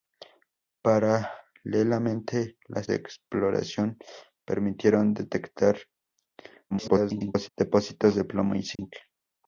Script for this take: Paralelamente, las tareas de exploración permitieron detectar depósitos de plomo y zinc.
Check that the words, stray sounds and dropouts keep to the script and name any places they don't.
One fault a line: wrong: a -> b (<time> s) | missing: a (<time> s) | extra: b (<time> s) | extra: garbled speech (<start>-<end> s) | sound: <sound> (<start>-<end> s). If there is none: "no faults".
missing: tareas (2.9 s)
extra: garbled speech (6.7-7.5 s)
sound: dropout (8.7-8.8 s)